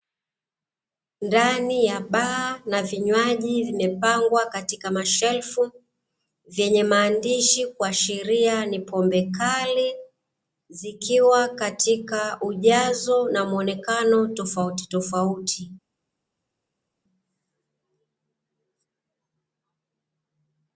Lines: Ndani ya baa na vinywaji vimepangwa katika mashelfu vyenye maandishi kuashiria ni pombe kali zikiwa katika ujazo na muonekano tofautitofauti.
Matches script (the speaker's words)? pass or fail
pass